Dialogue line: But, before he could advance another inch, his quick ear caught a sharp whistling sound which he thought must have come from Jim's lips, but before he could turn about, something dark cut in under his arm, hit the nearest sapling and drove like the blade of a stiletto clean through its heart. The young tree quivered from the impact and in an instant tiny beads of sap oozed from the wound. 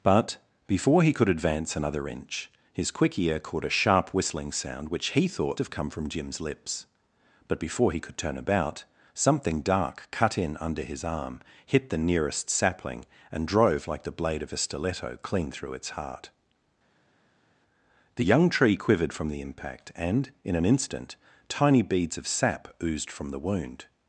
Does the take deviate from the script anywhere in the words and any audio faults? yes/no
yes